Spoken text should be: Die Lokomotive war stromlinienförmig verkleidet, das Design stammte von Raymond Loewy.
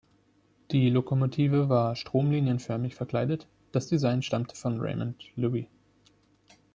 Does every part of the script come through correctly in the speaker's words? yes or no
yes